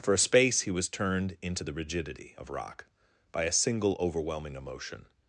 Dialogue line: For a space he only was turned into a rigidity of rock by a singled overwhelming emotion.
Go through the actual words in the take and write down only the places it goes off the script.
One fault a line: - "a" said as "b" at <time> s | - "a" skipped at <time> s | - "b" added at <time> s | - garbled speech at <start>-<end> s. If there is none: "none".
- "only" skipped at 0.7 s
- "a" said as "the" at 1.6 s
- "singled" said as "single" at 3.5 s